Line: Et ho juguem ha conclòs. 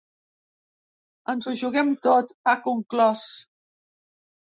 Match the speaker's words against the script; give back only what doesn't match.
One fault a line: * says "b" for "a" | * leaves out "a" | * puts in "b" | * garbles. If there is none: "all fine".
* says "Ens" for "Et"
* puts in "tot"